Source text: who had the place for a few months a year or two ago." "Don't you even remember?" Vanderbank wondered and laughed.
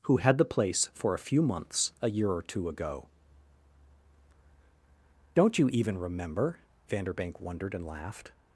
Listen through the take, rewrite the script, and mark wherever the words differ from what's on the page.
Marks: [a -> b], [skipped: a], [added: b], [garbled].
who had the place for a few months a year or two ago." "Don't you even remember?" Vanderbank wondered and laughed.